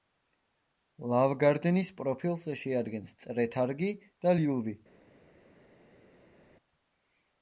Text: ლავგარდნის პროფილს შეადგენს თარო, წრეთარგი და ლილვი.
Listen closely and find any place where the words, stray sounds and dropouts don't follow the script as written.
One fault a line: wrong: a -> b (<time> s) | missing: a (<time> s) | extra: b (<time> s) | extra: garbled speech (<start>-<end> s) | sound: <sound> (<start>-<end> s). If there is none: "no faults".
missing: თარო (3.1 s)